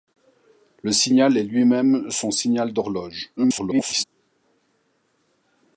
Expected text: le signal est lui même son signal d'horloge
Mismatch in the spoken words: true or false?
true